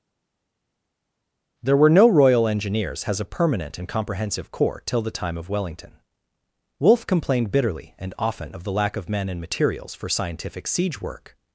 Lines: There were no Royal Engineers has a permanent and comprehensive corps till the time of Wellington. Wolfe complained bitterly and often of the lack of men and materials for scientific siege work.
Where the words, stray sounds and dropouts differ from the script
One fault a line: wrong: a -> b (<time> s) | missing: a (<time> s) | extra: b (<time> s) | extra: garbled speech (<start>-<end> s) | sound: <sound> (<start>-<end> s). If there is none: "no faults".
no faults